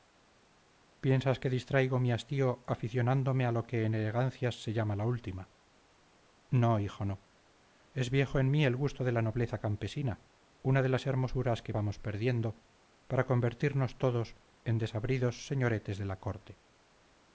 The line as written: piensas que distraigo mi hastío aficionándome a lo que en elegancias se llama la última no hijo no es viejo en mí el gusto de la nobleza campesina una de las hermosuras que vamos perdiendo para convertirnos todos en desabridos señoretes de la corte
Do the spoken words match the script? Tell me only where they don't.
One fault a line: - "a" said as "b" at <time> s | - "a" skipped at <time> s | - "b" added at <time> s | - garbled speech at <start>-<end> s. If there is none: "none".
none